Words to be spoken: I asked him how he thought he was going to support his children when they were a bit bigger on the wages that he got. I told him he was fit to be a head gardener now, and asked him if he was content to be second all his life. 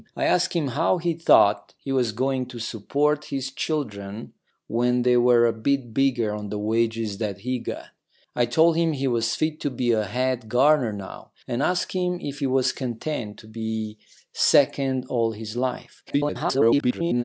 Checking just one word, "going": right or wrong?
right